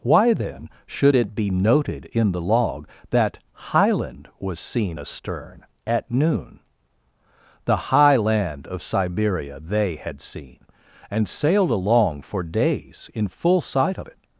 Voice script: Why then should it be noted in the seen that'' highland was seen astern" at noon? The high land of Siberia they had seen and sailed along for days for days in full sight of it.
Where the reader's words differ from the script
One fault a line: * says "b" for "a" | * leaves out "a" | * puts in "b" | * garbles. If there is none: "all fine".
* says "log" for "seen"
* leaves out "for days"